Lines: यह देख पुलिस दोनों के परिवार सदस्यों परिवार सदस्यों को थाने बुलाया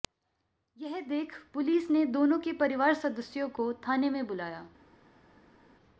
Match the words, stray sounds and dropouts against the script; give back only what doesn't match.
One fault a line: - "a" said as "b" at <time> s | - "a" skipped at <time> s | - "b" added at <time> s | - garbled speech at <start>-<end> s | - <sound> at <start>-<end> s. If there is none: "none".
- "ने" added at 1.9 s
- "परिवार सदस्यों" skipped at 3.5 s
- "में" added at 4.1 s